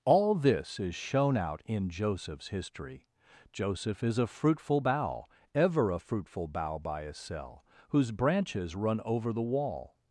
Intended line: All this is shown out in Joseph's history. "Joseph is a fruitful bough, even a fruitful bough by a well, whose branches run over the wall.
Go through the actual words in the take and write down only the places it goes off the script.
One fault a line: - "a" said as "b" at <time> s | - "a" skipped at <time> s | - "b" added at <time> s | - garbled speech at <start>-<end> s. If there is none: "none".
- "even" said as "ever" at 5.5 s
- "well" said as "cell" at 7.1 s